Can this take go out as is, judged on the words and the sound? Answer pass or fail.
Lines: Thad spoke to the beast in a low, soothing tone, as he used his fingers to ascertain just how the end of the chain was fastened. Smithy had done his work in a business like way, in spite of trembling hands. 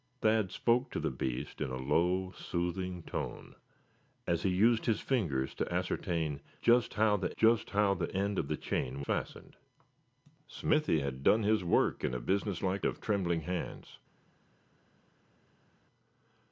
fail